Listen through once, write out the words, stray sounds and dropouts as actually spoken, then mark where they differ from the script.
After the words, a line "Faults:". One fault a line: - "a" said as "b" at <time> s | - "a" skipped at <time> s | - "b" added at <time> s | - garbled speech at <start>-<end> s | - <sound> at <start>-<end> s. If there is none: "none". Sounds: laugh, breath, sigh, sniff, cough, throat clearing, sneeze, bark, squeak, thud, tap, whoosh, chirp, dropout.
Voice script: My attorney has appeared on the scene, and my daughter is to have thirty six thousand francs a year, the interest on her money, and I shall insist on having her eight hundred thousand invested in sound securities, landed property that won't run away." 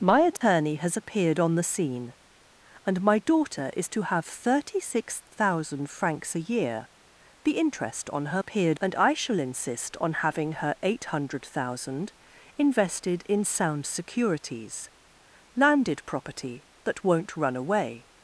My attorney has appeared on the scene, and my daughter is to have thirty six thousand francs a year, the interest on her appeared, and I shall insist on having her eight hundred thousand invested in sound securities, landed property that won't run away."
Faults:
- dropout at 0.4-0.4 s
- "money" said as "appeared" at 8.4 s